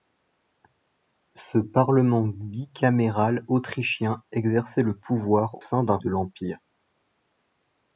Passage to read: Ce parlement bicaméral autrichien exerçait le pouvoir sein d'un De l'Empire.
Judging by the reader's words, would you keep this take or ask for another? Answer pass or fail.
pass